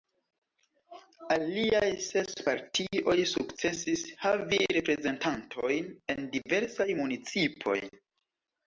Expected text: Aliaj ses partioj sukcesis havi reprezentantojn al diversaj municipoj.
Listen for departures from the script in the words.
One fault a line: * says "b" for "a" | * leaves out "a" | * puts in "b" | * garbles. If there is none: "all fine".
* says "en" for "al"